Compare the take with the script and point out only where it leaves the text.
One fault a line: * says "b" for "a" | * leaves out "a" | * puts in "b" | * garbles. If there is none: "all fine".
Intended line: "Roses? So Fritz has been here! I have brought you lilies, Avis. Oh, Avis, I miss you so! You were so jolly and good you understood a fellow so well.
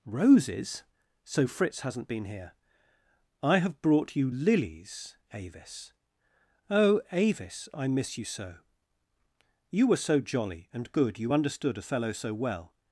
* says "hasn't" for "has"